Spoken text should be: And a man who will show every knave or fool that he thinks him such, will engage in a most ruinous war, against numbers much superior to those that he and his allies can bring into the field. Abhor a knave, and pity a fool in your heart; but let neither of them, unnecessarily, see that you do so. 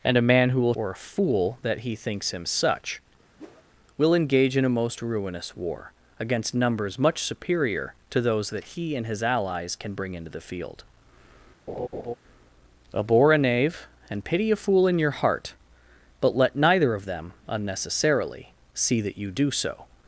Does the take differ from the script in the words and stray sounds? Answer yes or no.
yes